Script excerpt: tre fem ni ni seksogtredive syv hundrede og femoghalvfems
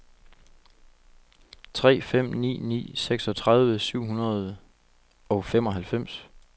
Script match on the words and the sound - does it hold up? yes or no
yes